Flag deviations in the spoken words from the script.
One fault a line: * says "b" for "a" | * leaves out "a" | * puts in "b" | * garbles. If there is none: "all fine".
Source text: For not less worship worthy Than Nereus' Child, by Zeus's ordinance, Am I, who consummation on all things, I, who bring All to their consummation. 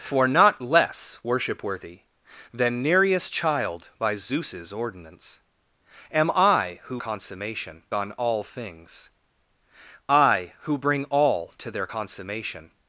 all fine